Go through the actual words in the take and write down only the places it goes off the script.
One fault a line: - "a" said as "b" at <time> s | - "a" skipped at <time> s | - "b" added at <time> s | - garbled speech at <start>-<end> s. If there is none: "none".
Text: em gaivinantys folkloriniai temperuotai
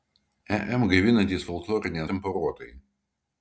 none